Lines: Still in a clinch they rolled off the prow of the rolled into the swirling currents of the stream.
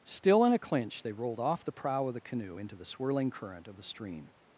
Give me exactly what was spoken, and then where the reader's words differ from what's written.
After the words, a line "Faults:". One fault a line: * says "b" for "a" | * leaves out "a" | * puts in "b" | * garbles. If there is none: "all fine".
Still in a clinch they rolled off the prow of the canoe into the swirling current of the stream.
Faults:
* says "canoe" for "rolled"
* says "current" for "currents"